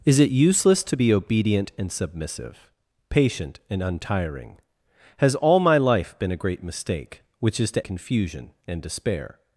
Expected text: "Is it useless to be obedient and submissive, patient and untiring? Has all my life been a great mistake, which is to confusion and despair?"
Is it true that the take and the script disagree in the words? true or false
false